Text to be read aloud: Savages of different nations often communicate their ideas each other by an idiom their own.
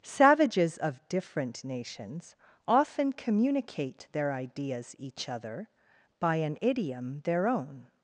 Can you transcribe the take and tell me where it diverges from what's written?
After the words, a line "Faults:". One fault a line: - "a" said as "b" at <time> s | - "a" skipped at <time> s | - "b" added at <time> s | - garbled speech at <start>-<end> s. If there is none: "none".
Savages of different nations often communicate their ideas each other by an idiom their own.
Faults:
none